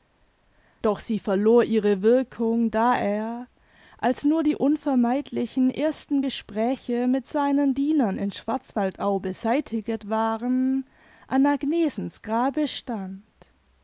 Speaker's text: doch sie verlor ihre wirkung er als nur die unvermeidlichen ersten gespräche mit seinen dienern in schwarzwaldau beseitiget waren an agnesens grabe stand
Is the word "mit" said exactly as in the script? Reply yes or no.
yes